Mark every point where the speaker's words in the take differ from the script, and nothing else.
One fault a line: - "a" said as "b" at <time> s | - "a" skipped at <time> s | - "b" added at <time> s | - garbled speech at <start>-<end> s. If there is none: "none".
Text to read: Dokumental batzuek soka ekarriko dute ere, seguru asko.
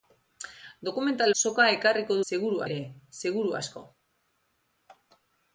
- "batzuek" skipped at 1.3 s
- "dute" said as "seguru" at 2.3 s